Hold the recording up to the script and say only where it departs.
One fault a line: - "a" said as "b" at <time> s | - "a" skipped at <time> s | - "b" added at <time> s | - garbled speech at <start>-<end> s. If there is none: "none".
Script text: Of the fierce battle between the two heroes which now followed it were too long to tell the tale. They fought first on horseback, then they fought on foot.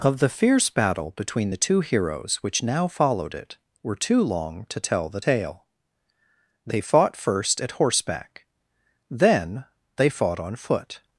- "on" said as "at" at 7.6 s